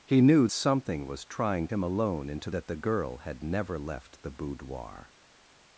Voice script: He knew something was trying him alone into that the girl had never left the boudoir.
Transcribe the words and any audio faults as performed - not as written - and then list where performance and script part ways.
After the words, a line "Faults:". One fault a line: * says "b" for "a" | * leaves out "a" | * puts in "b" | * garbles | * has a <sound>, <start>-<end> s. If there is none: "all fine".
He knew something was trying him alone into that the girl had never left the boudoir.
Faults:
all fine